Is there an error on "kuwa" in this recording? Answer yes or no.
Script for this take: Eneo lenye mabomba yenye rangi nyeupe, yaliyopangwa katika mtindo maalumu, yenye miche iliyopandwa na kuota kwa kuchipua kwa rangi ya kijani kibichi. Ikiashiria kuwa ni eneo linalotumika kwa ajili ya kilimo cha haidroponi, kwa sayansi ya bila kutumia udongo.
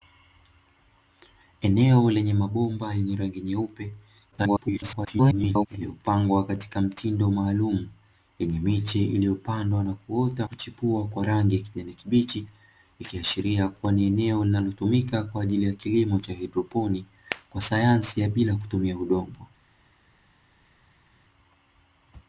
no